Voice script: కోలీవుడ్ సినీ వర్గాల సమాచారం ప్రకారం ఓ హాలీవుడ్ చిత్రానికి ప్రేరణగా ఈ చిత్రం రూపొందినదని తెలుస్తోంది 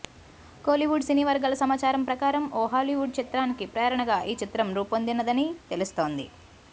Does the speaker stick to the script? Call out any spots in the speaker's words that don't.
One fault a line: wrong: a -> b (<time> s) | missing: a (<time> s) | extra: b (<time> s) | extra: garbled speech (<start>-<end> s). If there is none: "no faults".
no faults